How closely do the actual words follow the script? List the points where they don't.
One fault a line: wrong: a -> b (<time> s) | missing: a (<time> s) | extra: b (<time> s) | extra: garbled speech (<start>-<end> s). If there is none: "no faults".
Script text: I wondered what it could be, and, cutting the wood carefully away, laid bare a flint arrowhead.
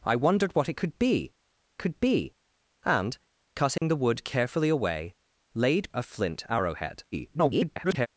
extra: could be (1.8 s)
missing: bare (5.9 s)
extra: garbled speech (7.1-8.1 s)